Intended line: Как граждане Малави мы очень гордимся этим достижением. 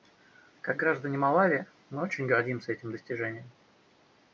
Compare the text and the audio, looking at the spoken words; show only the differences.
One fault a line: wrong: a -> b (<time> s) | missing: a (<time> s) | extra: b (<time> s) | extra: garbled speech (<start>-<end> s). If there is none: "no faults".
no faults